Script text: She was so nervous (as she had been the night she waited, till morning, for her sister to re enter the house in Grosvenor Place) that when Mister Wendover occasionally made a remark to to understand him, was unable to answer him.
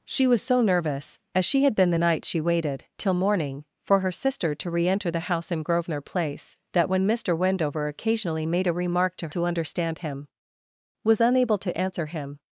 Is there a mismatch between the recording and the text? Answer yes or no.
no